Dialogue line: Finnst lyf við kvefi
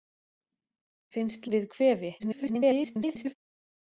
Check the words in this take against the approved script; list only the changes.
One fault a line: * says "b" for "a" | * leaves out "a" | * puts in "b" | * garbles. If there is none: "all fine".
* leaves out "lyf"
* garbles